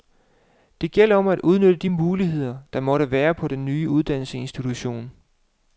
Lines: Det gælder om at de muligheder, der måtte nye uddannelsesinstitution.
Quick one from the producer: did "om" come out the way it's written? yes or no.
yes